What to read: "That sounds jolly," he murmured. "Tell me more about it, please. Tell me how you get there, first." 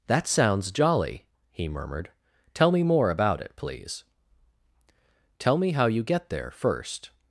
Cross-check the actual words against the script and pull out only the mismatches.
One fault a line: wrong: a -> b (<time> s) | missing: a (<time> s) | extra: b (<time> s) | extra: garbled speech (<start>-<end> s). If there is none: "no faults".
no faults